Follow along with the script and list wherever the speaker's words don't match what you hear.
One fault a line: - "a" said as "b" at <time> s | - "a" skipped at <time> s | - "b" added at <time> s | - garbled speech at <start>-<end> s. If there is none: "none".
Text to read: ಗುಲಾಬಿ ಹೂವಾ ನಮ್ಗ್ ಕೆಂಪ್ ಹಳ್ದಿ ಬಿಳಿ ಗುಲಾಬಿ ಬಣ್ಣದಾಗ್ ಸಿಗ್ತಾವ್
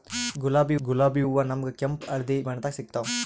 - "ಗುಲಾಬಿ" added at 0.8 s
- "ಬಿಳಿ ಗುಲಾಬಿ" skipped at 2.4 s